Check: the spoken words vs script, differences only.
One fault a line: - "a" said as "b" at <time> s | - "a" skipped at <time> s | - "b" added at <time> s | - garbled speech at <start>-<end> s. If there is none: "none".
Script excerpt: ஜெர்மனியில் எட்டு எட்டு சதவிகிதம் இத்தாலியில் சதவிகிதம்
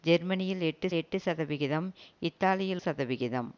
none